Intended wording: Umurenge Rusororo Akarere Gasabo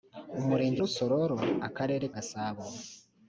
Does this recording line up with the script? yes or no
yes